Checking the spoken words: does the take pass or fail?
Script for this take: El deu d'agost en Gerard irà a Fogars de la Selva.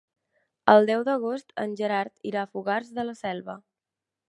pass